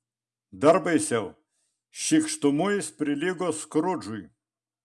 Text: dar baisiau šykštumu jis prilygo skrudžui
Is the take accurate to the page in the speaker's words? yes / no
yes